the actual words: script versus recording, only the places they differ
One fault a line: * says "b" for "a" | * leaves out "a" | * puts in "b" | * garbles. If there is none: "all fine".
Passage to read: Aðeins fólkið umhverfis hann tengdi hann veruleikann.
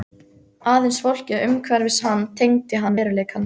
all fine